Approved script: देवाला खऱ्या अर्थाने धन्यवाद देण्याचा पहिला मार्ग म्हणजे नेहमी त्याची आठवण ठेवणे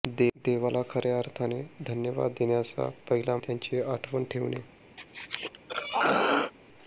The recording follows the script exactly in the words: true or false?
false